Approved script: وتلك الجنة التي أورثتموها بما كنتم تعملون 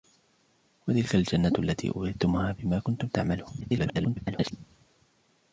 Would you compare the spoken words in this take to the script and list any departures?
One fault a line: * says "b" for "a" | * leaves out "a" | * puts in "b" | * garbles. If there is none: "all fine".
* garbles